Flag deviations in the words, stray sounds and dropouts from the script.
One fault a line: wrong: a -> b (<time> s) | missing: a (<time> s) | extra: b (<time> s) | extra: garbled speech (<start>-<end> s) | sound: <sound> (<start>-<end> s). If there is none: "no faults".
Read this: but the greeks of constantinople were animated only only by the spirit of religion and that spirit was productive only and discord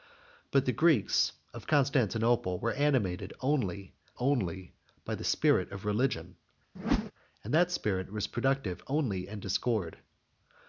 sound: whoosh (6.8-7.1 s)